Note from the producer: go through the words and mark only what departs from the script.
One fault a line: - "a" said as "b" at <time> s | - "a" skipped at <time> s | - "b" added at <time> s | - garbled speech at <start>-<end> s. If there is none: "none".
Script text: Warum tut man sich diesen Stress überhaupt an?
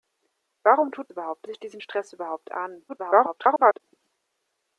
- "man" said as "überhaupt" at 1.1 s
- garbled speech at 2.9-3.8 s